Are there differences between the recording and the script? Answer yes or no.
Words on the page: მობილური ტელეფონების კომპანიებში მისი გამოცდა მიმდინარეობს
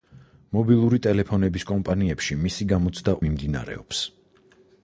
no